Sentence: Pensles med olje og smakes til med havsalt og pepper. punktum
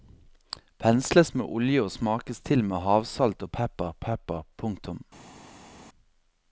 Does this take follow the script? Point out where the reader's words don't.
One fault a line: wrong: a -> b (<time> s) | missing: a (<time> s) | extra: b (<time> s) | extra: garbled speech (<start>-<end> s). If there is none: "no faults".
extra: pepper (4.1 s)